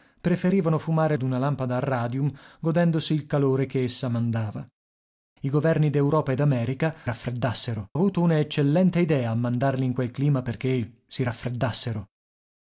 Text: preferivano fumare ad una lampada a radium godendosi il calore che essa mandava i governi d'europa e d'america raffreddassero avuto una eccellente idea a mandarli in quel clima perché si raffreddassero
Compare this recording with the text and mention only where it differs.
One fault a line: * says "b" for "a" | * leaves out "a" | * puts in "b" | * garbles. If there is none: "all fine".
all fine